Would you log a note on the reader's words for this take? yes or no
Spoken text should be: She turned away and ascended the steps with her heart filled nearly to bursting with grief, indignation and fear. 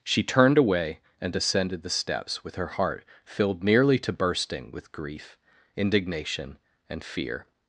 yes